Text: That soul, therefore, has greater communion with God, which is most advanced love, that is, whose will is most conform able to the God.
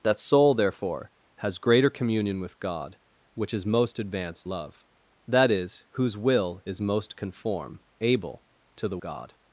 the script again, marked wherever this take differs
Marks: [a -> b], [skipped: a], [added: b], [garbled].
That soul, therefore, has greater communion with God, which is most advanced love, that is, whose will is most conform able to the God.